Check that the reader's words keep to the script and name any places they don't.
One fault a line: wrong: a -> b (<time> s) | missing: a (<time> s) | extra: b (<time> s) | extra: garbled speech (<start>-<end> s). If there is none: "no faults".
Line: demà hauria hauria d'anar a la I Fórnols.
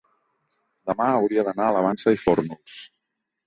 missing: hauria (1.4 s)
extra: Vansa (1.9 s)